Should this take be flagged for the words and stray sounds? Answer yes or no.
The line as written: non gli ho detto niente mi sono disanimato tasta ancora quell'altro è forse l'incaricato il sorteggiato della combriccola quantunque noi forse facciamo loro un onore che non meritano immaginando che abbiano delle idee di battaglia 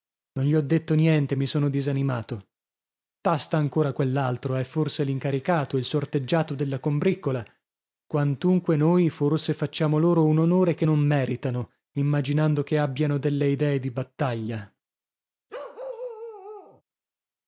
yes